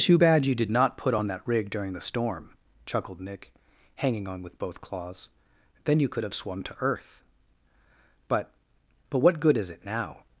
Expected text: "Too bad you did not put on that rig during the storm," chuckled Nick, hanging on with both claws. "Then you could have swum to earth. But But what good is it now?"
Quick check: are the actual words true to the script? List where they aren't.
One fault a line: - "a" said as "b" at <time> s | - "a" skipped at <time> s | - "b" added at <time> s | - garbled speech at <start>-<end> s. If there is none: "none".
none